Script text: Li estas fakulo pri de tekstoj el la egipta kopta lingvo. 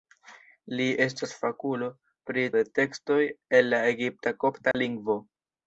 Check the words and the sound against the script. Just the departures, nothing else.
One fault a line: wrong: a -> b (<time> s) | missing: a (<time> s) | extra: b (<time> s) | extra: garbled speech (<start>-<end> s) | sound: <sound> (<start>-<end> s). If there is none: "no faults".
sound: dropout (4.7-4.7 s)